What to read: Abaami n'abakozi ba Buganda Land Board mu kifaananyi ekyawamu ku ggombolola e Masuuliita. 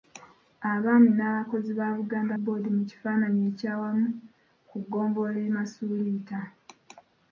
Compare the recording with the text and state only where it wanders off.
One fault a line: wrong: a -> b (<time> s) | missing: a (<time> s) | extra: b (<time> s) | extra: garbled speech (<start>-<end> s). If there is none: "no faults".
missing: Land (2.3 s)